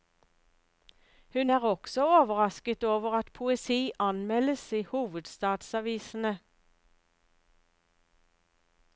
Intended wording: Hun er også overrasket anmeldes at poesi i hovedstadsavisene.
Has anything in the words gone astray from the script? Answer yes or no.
yes